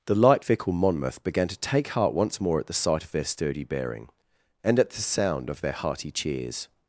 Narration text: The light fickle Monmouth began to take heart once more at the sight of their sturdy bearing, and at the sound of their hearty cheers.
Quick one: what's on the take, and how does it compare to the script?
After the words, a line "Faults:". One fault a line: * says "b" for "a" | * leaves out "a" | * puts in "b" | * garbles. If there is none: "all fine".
The light fickle Monmouth began to take heart once more at the sight of their sturdy bearing, and at the sound of their hearty cheers.
Faults:
all fine